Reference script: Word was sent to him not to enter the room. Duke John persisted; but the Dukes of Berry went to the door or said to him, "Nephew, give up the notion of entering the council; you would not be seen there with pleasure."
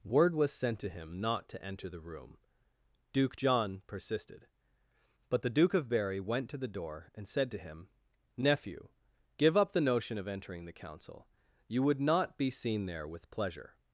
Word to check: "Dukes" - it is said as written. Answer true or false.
false